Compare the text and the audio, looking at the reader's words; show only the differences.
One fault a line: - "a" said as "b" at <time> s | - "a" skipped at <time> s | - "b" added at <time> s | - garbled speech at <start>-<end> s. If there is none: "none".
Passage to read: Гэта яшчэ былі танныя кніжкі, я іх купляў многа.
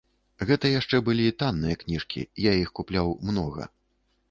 none